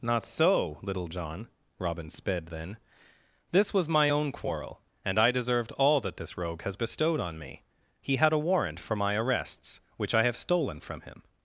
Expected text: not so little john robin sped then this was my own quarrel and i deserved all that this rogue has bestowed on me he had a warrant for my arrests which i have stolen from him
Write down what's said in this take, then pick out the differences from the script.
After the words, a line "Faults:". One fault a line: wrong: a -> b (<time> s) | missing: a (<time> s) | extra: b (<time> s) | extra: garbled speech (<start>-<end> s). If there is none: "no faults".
not so little john robin sped then this was my own quarrel and i deserved all that this rogue has bestowed on me he had a warrant for my arrests which i have stolen from him
Faults:
no faults